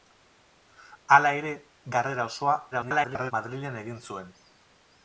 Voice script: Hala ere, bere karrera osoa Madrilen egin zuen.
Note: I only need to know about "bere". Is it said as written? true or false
false